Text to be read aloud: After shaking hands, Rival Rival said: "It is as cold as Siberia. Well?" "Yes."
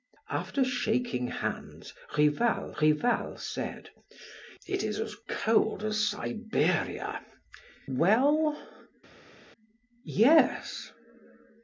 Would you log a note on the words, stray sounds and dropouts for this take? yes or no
no